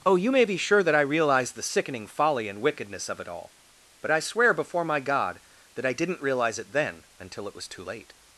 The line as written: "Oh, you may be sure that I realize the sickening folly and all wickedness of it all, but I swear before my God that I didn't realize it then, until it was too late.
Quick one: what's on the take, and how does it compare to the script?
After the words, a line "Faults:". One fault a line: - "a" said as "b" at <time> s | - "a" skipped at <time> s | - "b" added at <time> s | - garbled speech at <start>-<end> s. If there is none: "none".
"Oh, you may be sure that I realize the sickening folly and wickedness of it all, but I swear before my God that I didn't realize it then, until it was too late.
Faults:
- "all" skipped at 2.6 s